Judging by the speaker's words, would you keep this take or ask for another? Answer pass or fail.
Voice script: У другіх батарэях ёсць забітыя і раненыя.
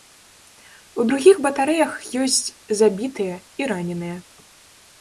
pass